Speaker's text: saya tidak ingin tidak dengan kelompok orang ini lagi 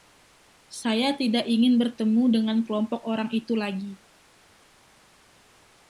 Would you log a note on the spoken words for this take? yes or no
yes